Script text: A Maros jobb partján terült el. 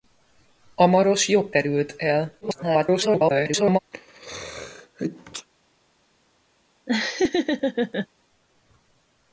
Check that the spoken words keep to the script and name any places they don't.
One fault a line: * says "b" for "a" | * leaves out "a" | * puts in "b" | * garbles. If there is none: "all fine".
* leaves out "partján"
* garbles